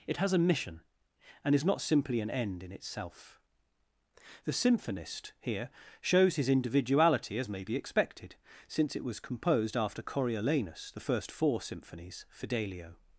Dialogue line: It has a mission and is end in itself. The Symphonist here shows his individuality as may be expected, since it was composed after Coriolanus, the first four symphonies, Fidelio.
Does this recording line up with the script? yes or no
no